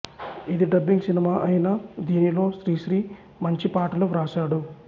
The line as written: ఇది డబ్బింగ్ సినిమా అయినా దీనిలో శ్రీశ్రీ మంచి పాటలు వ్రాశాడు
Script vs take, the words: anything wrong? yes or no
no